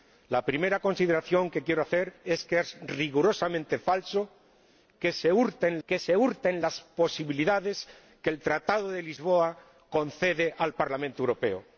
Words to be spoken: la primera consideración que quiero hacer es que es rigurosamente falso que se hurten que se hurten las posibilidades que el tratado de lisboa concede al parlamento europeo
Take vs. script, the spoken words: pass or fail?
pass